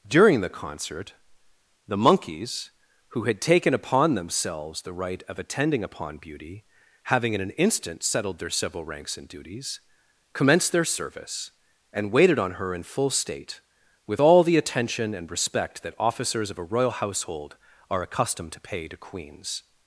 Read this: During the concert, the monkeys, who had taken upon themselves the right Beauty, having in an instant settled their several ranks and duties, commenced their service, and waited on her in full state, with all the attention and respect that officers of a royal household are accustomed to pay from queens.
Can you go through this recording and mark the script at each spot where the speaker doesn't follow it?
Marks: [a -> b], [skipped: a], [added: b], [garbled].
During the concert, the monkeys, who had taken upon themselves the right [added: of attending upon] Beauty, having in an instant settled their several ranks and duties, commenced their service, and waited on her in full state, with all the attention and respect that officers of a royal household are accustomed to pay [from -> to] queens.